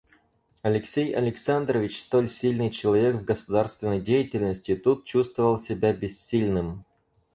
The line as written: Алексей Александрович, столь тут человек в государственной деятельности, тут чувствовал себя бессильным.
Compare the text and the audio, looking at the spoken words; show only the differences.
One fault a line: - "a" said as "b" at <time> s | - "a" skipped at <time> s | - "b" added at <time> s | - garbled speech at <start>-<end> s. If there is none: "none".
- "тут" said as "сильный" at 2.3 s